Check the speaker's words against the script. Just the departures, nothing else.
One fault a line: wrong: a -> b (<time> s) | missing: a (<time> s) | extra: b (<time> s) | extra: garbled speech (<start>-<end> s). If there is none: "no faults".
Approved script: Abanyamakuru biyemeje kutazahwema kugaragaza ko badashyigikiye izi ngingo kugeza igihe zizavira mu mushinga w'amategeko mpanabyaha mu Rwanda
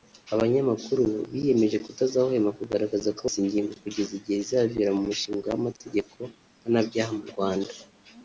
missing: badashyigikiye (3.2 s)